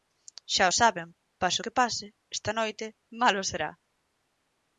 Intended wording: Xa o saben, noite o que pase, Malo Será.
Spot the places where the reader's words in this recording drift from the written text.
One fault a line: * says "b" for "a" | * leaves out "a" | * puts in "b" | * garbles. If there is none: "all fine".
* says "pase" for "noite"
* puts in "esta noite"